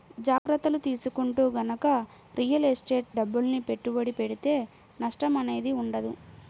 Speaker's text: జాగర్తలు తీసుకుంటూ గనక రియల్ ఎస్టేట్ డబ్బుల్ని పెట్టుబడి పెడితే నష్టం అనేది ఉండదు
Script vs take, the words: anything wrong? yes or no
no